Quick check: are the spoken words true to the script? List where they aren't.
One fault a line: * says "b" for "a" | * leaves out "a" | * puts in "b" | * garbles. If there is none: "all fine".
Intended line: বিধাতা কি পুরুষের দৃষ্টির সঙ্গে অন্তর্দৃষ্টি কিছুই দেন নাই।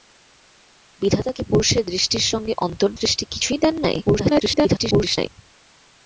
* garbles